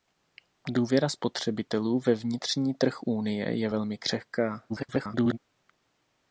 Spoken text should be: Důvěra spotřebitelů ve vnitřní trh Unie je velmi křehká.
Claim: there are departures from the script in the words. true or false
true